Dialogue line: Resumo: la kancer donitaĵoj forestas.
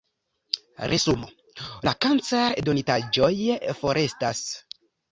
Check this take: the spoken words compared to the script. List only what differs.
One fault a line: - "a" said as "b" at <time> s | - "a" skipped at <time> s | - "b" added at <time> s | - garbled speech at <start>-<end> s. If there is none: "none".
none